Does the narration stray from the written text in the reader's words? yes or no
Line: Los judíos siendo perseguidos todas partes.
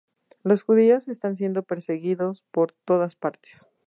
yes